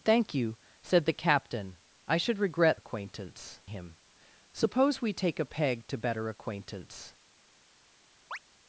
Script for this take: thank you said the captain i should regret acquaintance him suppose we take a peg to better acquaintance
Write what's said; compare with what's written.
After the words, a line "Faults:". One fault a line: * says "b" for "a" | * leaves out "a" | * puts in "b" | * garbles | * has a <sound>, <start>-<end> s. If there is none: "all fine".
thank you said the captain i should regret acquaintance him suppose we take a peg to better acquaintance
Faults:
* has a chirp, 8.3-8.4 s